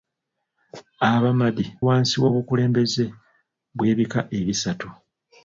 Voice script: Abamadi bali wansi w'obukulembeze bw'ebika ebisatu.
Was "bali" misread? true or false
true